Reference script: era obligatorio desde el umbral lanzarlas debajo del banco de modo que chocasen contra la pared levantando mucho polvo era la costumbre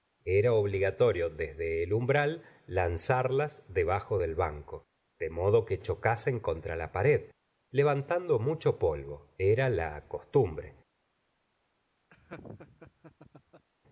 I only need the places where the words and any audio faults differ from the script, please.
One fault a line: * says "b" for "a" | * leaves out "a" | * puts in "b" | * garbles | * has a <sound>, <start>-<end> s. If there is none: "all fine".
* has a laugh, 12.1-13.7 s